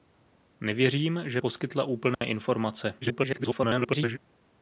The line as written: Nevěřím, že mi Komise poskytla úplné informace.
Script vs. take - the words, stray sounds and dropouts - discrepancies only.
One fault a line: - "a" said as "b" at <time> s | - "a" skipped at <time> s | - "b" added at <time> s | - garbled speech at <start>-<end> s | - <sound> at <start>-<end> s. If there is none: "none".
- "mi Komise" skipped at 1.4 s
- dropout at 2.1-2.2 s
- garbled speech at 3.0-4.2 s